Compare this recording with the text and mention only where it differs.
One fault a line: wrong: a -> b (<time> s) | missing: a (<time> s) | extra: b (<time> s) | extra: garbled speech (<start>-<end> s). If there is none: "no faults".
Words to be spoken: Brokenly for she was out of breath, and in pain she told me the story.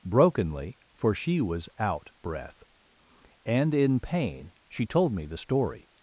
missing: of (2.1 s)